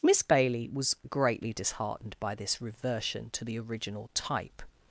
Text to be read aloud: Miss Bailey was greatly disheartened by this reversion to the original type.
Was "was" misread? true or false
false